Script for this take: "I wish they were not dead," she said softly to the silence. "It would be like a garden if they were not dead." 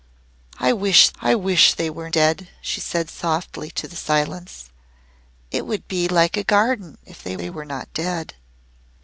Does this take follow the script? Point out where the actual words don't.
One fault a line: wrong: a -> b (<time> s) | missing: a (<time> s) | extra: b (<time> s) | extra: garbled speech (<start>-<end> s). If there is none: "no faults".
extra: I wish (1.2 s)
missing: not (2.1 s)
extra: they (7.4 s)